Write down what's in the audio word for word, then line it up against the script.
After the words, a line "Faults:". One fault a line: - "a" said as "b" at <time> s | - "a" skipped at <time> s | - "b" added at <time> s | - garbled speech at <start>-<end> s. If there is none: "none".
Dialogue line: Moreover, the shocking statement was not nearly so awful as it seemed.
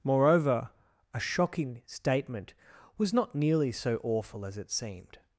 Moreover, a shocking statement was not nearly so awful as it seemed.
Faults:
- "the" said as "a" at 1.1 s